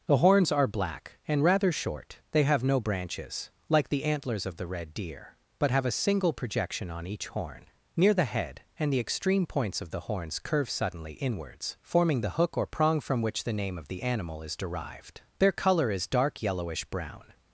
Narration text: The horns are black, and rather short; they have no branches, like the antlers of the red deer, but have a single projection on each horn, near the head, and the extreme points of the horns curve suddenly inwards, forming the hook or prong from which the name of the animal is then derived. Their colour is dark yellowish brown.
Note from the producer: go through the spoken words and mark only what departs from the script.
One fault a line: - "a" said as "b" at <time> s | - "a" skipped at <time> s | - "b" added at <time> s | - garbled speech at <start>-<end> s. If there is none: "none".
- "then" skipped at 14.6 s